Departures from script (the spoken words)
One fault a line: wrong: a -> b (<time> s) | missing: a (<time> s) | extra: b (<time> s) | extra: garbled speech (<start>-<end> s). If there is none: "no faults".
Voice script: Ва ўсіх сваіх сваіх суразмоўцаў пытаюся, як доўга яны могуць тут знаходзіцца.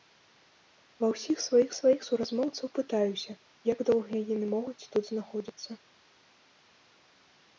no faults